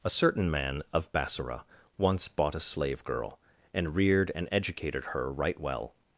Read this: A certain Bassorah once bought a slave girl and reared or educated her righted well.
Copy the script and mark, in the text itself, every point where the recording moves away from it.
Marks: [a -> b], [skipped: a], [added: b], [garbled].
A certain [added: man of] Bassorah once bought a slave girl and reared [or -> and] educated her [righted -> right] well.